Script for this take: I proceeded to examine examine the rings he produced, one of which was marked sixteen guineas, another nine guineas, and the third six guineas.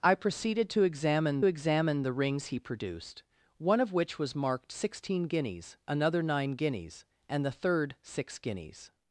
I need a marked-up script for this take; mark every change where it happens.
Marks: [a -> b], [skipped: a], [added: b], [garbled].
I proceeded to examine examine the rings he produced, one of which was marked sixteen guineas, another nine guineas, and the third six guineas.